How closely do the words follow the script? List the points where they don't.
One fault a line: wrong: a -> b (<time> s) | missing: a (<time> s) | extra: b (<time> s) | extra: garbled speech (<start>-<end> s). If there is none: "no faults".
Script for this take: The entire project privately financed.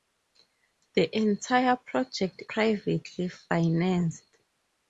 no faults